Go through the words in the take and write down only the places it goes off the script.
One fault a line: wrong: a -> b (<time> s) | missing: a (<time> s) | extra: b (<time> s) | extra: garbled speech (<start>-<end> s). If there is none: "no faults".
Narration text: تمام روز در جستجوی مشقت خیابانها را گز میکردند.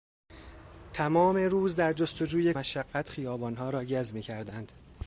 no faults